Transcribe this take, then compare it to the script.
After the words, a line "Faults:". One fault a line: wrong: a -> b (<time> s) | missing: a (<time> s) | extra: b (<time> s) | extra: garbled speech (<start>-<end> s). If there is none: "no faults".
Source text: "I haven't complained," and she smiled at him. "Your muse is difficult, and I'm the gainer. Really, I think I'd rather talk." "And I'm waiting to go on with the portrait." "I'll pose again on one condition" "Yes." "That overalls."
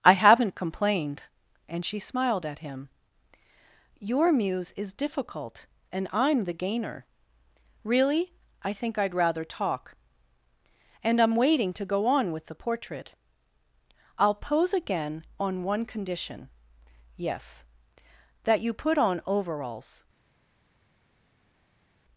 "I haven't complained," and she smiled at him. "Your muse is difficult, and I'm the gainer. Really, I think I'd rather talk." "And I'm waiting to go on with the portrait." "I'll pose again on one condition" "Yes." "That you put on overalls."
Faults:
extra: you put on (18.6 s)